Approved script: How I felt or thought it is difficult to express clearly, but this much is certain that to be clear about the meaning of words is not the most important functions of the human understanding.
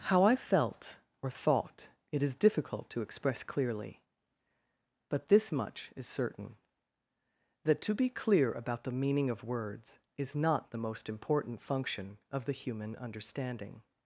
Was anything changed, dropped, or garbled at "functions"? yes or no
yes